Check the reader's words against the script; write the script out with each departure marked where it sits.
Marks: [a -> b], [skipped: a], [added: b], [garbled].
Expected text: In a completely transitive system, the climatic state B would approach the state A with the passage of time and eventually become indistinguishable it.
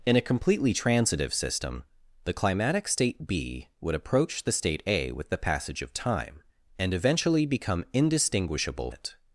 In a completely transitive system, the climatic state B would approach the state A with the passage of time and eventually become indistinguishable it.